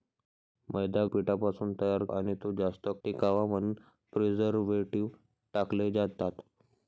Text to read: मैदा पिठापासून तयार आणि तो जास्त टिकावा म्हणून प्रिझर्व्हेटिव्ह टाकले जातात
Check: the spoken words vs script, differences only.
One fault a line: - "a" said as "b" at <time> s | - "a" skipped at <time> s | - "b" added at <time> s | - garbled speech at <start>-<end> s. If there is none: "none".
none